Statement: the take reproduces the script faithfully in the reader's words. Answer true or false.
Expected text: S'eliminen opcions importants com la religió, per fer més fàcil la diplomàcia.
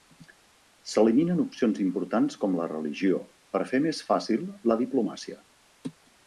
true